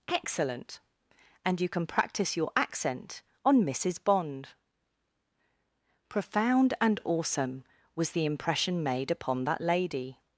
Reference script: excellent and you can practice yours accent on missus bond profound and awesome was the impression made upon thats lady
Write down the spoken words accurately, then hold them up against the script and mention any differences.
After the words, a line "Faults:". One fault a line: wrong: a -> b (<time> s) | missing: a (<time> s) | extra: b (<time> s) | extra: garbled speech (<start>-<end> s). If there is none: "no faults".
excellent and you can practice your accent on missus bond profound and awesome was the impression made upon that lady
Faults:
wrong: yours -> your (2.4 s)
wrong: thats -> that (9.4 s)